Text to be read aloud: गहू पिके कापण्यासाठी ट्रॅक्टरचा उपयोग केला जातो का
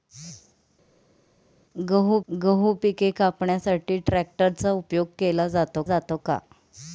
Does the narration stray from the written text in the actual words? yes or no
yes